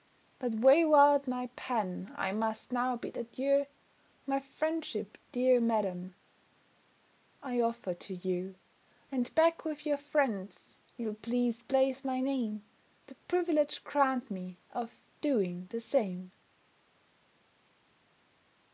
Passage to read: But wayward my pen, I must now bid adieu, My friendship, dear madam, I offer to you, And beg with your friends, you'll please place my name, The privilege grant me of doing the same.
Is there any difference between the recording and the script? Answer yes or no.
no